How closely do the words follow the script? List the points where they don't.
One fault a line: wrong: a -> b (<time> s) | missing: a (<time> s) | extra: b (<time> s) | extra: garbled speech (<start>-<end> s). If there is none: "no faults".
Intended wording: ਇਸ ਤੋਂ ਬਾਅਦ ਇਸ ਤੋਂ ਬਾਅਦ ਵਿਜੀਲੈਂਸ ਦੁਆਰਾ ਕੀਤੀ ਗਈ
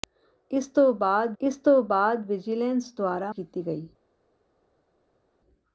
no faults